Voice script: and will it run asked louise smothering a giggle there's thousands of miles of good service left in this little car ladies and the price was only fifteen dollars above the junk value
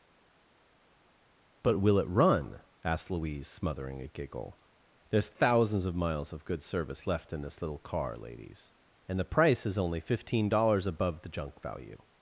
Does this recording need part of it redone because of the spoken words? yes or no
yes